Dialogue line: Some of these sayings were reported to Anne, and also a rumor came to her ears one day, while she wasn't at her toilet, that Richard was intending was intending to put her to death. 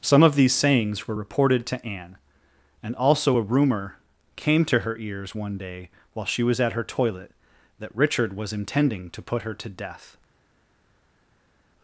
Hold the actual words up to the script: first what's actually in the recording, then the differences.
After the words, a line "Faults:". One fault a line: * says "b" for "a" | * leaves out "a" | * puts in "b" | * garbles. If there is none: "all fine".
Some of these sayings were reported to Anne, and also a rumor came to her ears one day, while she was at her toilet, that Richard was intending to put her to death.
Faults:
* says "was" for "wasn't"
* leaves out "was intending"